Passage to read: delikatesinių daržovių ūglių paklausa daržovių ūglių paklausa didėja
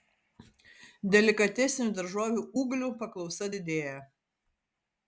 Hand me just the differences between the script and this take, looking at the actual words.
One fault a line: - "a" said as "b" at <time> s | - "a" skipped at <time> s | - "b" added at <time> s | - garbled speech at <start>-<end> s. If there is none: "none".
- "daržovių ūglių paklausa" skipped at 3.5 s